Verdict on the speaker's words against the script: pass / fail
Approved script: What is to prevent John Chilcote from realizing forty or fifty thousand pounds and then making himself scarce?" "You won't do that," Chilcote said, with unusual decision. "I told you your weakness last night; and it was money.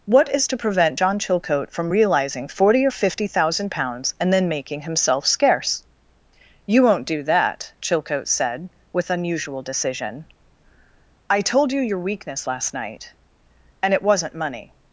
fail